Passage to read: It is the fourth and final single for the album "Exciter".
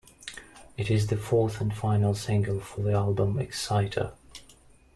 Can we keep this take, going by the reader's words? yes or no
yes